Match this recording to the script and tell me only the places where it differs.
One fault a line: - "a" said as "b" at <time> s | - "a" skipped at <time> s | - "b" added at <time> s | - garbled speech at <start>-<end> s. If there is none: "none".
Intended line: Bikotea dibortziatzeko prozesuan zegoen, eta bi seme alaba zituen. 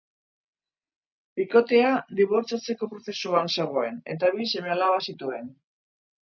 none